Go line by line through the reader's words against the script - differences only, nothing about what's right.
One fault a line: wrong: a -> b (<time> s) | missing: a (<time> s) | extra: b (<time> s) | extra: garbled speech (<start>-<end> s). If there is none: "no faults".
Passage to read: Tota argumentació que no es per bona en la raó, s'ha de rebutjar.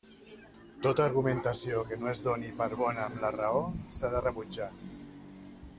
extra: doni (2.3 s)
wrong: en -> amb (3.1 s)